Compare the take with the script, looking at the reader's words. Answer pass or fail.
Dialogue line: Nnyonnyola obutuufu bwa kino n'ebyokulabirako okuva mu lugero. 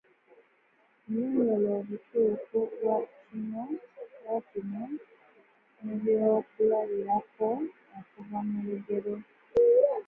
pass